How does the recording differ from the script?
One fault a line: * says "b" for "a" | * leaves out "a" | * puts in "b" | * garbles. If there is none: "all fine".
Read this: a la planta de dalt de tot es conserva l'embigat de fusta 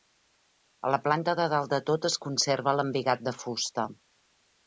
all fine